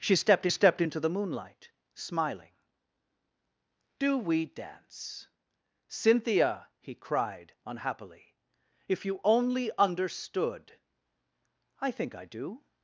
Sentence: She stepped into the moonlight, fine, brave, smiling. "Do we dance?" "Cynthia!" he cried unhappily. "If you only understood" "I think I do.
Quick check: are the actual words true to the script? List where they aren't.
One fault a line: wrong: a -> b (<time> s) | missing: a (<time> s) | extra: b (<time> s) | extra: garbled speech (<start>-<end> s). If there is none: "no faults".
extra: stepped (0.5 s)
missing: fine brave (1.7 s)